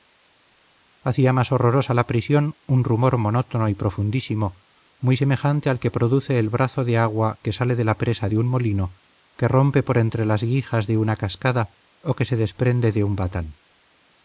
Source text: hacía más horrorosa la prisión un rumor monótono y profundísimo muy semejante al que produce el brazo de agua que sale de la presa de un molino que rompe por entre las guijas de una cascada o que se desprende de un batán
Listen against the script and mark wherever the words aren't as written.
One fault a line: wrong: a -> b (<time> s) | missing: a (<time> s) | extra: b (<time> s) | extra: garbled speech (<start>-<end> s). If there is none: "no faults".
no faults